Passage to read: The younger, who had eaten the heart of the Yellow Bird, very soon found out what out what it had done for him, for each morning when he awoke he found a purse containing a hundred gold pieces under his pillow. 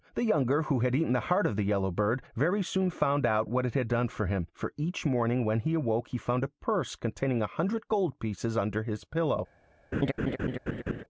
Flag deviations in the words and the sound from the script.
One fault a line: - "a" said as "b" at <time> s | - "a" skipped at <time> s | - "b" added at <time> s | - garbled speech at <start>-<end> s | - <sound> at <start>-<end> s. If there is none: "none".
- "out what" skipped at 3.7 s
- laugh at 9.9-11.0 s